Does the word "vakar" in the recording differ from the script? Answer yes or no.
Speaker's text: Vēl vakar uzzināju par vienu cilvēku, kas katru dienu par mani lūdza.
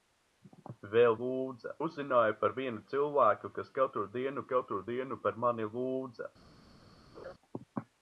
yes